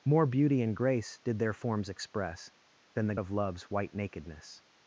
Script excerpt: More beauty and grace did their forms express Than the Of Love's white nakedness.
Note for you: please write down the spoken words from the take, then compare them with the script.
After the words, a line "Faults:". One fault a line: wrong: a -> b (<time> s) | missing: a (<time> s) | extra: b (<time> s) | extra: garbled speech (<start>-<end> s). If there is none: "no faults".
More beauty and grace did their forms express Than the Of Love's white nakedness.
Faults:
no faults